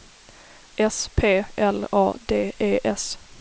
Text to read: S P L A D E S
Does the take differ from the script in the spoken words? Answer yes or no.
no